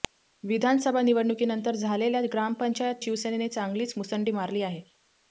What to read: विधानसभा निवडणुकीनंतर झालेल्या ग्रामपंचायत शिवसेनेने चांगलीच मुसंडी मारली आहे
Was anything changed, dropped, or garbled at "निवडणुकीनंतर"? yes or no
no